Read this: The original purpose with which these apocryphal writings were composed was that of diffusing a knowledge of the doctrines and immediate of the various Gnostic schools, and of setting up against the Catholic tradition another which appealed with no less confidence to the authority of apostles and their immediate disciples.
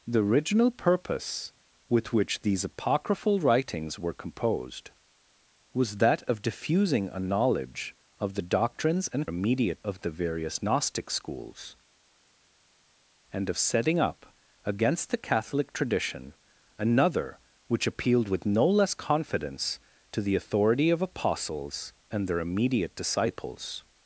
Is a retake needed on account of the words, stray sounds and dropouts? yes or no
no